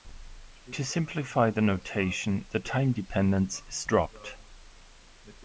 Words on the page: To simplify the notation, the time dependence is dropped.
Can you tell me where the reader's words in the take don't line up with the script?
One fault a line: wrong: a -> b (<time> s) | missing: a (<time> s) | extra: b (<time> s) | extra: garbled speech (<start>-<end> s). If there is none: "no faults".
no faults